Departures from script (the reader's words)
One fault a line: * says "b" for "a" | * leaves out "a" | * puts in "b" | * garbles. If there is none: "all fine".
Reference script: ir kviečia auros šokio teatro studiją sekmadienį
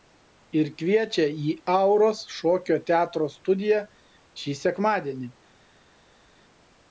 * puts in "į"
* puts in "šį"